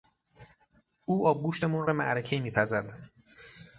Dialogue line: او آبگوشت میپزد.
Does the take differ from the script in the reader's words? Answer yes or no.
yes